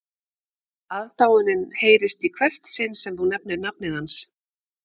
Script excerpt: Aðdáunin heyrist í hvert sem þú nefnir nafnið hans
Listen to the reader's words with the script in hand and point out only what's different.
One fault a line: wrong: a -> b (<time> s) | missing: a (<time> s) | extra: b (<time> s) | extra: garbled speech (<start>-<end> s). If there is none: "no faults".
extra: sinn (2.8 s)